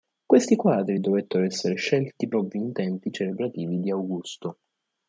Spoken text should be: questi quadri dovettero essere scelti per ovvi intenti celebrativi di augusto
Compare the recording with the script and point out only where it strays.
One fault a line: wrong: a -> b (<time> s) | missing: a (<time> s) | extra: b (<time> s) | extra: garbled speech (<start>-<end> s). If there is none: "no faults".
missing: per (2.3 s)